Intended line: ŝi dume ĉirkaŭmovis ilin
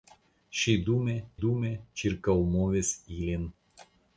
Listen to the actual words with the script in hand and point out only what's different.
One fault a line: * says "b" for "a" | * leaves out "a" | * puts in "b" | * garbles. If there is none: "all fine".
* puts in "dume"